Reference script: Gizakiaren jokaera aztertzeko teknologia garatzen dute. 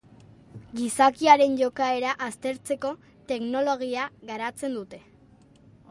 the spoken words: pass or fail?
pass